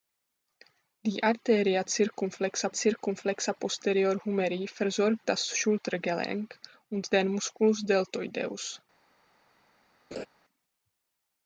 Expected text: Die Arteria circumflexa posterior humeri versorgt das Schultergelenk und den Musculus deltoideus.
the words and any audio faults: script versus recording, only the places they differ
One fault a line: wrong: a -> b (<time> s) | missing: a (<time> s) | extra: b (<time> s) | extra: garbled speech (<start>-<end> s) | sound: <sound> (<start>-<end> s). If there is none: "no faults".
extra: circumflexa (2.7 s)
sound: laugh (10.1-10.3 s)